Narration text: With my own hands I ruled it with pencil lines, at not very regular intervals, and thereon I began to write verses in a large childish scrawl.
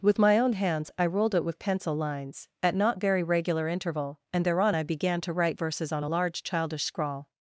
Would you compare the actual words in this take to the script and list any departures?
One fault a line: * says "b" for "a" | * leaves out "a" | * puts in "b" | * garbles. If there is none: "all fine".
* says "interval" for "intervals"
* says "on" for "in"